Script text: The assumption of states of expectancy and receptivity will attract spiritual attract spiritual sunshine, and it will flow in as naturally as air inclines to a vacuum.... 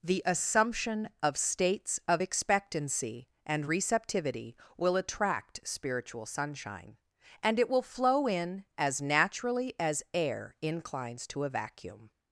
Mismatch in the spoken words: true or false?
true